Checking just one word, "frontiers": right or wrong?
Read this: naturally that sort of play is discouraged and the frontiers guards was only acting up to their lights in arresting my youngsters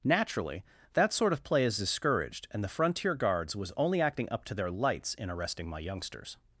wrong